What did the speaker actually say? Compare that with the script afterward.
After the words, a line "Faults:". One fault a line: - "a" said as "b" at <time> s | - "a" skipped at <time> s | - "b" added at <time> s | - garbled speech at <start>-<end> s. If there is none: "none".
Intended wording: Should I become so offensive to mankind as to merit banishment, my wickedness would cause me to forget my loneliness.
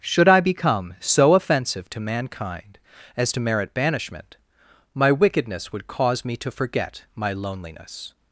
Should I become so offensive to mankind as to merit banishment, my wickedness would cause me to forget my loneliness.
Faults:
none